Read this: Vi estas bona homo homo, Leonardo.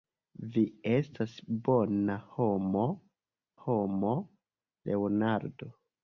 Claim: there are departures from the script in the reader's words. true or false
false